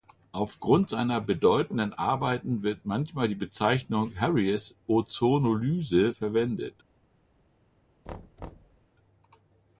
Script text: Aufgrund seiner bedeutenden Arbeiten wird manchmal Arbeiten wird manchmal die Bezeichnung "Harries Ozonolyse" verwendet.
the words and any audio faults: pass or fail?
fail